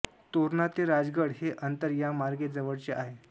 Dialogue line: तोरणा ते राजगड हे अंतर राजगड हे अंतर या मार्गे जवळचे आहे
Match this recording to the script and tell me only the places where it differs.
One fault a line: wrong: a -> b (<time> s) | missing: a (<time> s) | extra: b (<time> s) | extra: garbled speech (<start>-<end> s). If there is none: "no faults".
missing: राजगड हे अंतर (1.9 s)